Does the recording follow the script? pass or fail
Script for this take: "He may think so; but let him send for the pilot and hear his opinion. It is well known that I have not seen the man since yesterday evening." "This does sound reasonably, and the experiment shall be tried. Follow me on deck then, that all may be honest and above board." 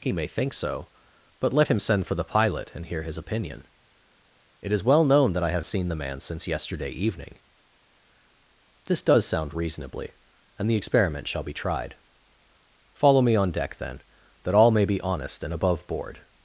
fail